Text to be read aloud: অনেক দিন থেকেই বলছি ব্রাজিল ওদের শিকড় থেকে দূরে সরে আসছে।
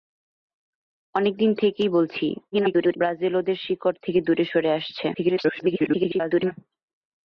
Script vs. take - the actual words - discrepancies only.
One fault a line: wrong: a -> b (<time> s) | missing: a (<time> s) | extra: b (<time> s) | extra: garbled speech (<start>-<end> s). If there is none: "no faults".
extra: garbled speech (2.5-3.0 s)
extra: garbled speech (5.1-6.5 s)